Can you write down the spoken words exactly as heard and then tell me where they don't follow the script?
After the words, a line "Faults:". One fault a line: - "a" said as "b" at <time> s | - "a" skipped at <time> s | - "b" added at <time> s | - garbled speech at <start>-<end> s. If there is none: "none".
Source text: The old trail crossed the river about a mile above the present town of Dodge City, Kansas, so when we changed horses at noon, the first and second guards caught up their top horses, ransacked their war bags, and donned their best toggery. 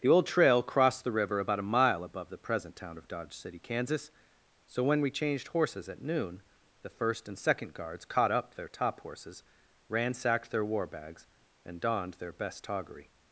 The old trail crossed the river about a mile above the present town of Dodge City, Kansas, so when we changed horses at noon, the first and second guards caught up their top horses, ransacked their war bags, and donned their best toggery.
Faults:
none